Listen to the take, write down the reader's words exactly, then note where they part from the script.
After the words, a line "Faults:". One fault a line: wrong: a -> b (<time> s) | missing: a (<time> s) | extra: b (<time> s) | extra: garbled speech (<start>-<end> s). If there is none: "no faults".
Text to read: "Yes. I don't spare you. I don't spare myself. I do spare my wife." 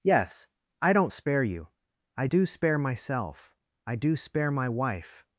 "Yes. I don't spare you. I do spare myself. I do spare my wife."
Faults:
wrong: don't -> do (2.2 s)